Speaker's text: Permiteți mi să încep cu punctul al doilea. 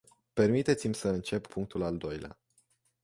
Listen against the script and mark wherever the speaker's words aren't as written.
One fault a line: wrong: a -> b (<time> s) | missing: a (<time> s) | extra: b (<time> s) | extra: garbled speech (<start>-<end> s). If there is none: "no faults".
missing: cu (1.5 s)